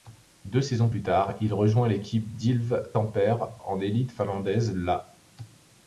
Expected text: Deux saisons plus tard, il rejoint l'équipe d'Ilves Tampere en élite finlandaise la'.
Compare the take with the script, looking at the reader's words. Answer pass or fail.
pass